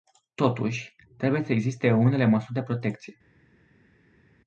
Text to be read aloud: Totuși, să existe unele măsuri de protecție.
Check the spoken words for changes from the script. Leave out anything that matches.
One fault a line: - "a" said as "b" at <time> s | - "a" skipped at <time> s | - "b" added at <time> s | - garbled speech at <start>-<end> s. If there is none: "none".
- "trebuie" added at 1.2 s